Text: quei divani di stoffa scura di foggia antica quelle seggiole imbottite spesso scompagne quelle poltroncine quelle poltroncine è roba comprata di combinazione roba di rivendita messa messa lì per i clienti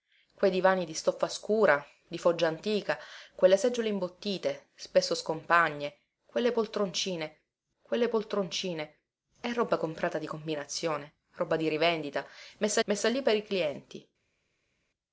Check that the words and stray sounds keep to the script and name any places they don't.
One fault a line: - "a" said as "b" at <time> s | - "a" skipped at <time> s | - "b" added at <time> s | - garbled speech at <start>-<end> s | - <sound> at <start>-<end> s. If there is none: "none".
none